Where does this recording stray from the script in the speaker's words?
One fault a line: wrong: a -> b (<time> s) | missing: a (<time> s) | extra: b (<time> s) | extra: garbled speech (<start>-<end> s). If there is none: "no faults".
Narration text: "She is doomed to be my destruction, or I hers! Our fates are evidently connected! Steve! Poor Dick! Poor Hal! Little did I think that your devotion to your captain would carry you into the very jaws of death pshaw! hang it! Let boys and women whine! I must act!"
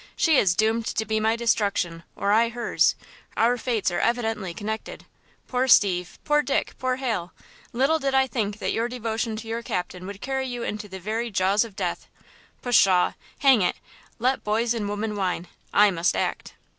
extra: Poor (5.5 s)